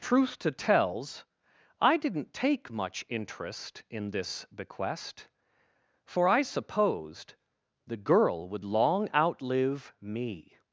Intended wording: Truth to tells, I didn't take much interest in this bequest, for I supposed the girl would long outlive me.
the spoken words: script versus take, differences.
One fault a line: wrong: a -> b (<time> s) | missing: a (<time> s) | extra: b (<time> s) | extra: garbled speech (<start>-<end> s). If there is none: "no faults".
no faults